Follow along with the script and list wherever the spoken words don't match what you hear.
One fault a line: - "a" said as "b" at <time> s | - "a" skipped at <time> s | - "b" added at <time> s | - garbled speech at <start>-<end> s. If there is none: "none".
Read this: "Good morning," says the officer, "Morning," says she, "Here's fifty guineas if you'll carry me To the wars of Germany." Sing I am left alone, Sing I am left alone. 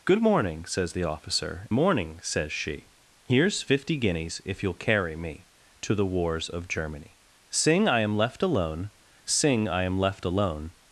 none